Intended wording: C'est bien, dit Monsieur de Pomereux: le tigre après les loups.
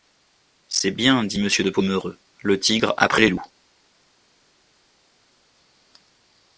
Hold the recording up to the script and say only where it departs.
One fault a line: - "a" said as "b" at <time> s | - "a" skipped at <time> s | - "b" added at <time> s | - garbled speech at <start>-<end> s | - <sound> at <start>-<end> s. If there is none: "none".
none